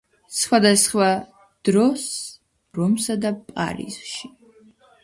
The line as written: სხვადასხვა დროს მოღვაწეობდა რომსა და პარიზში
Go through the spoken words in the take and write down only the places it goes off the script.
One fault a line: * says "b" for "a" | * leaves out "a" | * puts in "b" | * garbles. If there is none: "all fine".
* leaves out "მოღვაწეობდა"